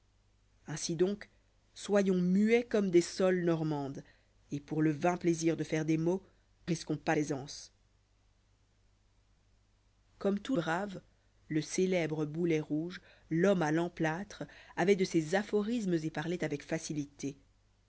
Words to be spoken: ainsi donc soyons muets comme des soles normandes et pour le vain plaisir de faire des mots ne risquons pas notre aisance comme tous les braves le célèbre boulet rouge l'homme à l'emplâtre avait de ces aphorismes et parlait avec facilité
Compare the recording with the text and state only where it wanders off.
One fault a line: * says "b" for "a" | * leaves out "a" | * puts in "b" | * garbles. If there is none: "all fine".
* leaves out "ne"
* leaves out "notre"
* leaves out "les"